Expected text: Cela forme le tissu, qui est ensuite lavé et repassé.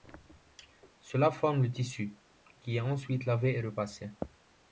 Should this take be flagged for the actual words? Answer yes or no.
no